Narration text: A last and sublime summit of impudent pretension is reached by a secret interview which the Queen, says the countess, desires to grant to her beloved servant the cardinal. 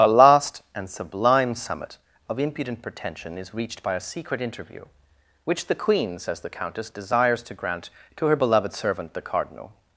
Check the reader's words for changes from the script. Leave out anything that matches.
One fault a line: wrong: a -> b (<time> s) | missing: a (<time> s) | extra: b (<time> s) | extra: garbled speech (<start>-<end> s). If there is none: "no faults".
no faults